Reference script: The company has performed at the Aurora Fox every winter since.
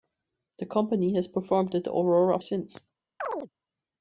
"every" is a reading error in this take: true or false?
true